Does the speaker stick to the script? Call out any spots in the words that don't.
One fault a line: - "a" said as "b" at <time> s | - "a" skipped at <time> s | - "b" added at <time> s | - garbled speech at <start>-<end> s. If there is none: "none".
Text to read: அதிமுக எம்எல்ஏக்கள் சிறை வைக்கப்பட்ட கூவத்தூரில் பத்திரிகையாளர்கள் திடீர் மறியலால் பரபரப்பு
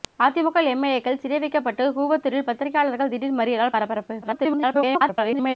- garbled speech at 4.2-5.5 s